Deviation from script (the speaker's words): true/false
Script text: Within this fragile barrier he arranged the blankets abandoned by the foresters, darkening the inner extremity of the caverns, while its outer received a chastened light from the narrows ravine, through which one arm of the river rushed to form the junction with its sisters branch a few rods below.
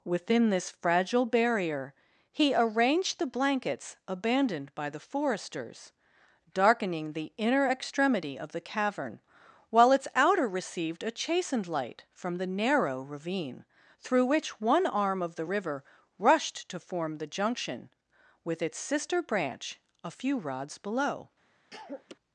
true